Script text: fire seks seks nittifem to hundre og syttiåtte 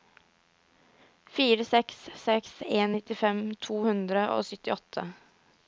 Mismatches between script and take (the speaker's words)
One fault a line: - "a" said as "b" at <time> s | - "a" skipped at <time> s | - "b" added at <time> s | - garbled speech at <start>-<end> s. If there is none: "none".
- "en" added at 2.8 s